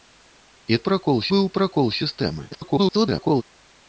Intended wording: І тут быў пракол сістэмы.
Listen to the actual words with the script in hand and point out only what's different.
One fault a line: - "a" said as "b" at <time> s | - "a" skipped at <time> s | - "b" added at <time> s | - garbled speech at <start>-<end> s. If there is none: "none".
- "тут" said as "пракол" at 0.9 s
- garbled speech at 2.5-3.4 s